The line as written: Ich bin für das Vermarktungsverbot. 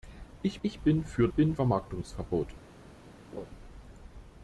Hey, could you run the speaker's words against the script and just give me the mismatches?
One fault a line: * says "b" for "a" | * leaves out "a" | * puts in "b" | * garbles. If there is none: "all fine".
* puts in "ich"
* says "bin" for "das"